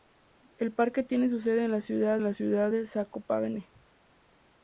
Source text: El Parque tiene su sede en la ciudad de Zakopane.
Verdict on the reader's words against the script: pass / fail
fail